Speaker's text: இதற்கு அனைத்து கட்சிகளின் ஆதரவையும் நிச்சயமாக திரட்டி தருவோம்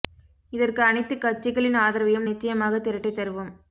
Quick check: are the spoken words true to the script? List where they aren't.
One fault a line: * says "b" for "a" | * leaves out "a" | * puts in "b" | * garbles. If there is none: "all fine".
all fine